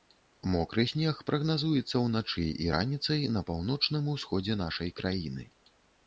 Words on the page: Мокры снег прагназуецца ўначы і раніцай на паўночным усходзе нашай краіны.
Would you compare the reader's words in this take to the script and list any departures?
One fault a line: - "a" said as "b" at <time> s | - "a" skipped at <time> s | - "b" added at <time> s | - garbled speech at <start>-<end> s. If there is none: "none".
none